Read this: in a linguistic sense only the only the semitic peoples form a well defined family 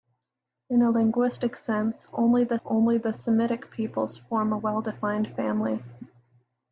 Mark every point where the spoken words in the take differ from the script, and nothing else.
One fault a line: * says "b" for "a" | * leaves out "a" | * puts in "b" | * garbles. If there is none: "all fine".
all fine